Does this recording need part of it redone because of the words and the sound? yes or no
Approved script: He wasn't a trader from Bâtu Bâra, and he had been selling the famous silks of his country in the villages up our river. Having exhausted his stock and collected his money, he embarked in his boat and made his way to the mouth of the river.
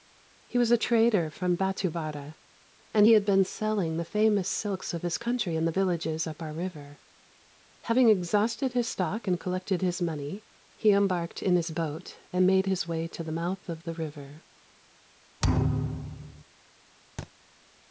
yes